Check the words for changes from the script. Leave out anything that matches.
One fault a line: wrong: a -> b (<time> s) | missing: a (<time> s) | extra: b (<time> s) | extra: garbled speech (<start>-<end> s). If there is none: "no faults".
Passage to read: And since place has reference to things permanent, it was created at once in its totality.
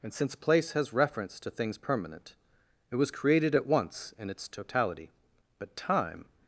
extra: But time (5.6 s)